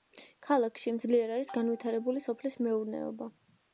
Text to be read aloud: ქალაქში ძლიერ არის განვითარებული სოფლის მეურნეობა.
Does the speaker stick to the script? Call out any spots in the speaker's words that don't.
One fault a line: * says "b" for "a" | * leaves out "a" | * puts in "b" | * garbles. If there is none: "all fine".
all fine